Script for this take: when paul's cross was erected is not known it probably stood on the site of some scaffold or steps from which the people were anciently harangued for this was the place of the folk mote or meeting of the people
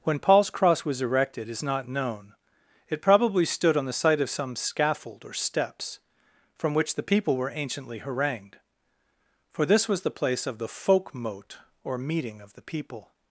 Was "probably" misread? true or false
false